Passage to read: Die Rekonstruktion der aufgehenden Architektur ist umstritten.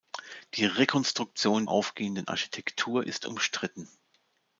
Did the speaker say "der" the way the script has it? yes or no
no